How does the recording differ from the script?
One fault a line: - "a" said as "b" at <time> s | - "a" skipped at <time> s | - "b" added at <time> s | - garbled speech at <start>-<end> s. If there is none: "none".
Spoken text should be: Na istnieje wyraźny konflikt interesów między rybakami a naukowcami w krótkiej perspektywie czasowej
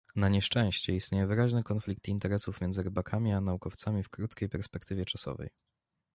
- "nieszczęście" added at 0.3 s